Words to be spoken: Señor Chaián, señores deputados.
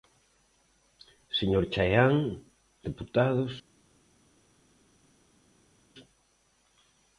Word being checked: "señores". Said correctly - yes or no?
no